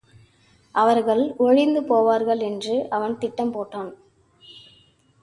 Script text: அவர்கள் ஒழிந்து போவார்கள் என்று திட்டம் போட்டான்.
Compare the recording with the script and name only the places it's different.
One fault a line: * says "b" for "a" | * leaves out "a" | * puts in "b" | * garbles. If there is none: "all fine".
* puts in "அவன்"